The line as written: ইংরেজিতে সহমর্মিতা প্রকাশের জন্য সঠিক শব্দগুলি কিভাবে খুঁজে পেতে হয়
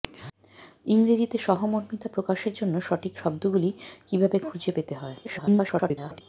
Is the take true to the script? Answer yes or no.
no